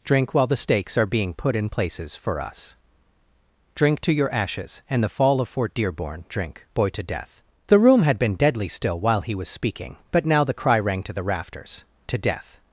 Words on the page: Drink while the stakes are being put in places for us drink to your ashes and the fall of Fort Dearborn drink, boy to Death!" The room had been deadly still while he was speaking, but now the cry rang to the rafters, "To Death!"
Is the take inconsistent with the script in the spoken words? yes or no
no